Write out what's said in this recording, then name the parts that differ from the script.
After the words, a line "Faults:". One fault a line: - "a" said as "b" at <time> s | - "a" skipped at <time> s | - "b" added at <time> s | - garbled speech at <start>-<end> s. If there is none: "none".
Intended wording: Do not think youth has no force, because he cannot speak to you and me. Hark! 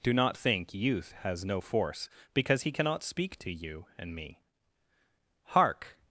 Do not think youth has no force, because he cannot speak to you and me. Hark!
Faults:
none